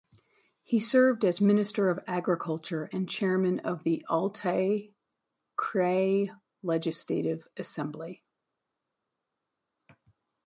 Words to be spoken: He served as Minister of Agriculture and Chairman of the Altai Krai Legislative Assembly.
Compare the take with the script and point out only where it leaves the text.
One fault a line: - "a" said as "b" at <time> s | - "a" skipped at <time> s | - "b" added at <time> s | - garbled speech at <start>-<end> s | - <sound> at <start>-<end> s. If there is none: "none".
none